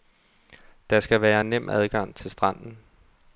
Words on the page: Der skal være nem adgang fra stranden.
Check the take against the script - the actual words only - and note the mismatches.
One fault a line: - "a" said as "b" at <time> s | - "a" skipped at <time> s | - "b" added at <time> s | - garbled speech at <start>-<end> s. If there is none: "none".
- "fra" said as "til" at 2.2 s